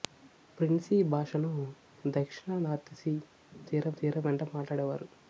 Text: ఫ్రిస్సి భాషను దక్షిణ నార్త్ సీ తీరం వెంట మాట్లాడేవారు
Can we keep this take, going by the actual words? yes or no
no